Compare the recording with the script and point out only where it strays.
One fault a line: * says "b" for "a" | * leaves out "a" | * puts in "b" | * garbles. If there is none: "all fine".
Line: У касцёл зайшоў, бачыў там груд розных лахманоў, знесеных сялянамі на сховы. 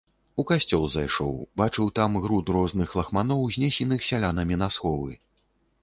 all fine